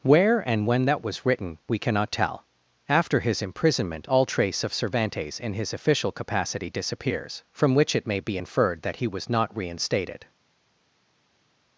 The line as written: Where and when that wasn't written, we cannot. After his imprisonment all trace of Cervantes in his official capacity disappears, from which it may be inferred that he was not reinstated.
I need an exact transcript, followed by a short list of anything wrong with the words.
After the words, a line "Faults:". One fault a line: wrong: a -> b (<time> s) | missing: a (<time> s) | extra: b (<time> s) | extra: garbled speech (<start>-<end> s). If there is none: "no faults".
Where and when that was written, we cannot tell. After his imprisonment all trace of Cervantes in his official capacity disappears, from which it may be inferred that he was not reinstated.
Faults:
wrong: wasn't -> was (1.0 s)
extra: tell (2.1 s)